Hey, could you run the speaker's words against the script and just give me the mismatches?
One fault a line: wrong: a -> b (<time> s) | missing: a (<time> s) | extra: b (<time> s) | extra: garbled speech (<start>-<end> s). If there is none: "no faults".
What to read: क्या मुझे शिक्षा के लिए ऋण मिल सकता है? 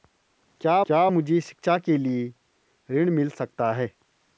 extra: क्या (0.9 s)